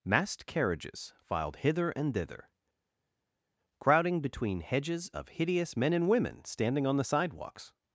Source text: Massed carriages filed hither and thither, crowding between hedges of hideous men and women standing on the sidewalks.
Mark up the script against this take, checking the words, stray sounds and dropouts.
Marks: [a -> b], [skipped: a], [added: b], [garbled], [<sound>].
Massed carriages filed hither and thither, crowding between hedges of hideous men and women standing on the sidewalks.